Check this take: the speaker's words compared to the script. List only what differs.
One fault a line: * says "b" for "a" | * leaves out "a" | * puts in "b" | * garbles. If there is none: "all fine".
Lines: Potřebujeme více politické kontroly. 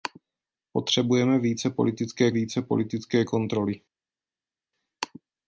* puts in "více politické"